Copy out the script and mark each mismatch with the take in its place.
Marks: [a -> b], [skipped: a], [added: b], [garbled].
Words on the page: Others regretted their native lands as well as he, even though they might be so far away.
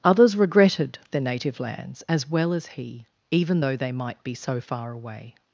Others regretted their native lands as well as he, even though they might be so far away.